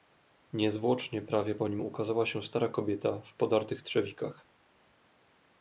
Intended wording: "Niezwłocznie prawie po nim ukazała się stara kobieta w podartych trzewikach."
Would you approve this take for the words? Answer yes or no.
yes